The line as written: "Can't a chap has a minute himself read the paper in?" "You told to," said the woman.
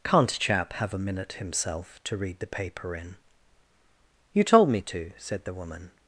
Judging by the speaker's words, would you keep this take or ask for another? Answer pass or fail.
fail